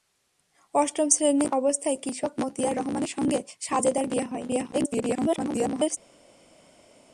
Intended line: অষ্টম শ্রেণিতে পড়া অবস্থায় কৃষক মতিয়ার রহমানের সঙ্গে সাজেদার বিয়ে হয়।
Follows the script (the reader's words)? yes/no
no